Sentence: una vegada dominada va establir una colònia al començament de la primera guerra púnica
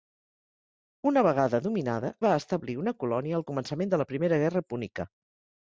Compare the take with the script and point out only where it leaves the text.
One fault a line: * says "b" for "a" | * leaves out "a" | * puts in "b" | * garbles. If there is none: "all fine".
all fine